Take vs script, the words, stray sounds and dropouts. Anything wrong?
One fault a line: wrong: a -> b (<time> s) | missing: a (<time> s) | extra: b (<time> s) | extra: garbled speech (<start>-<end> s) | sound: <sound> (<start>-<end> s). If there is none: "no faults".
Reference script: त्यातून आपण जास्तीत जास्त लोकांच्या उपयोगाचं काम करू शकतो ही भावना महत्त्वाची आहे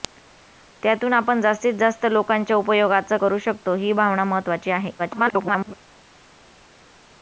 missing: काम (3.2 s)
extra: garbled speech (5.0-5.7 s)